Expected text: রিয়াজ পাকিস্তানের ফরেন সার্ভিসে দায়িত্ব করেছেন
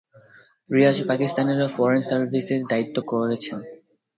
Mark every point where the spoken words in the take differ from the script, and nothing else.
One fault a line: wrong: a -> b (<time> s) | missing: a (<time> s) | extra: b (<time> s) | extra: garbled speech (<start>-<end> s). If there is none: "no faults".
no faults